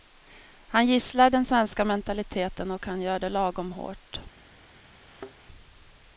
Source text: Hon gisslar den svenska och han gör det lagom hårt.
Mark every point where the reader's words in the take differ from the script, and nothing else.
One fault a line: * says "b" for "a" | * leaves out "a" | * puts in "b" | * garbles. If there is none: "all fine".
* says "Han" for "Hon"
* puts in "mentaliteten"